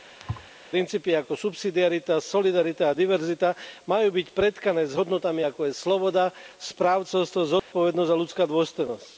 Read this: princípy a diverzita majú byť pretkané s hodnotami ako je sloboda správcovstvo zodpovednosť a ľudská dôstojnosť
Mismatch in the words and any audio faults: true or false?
true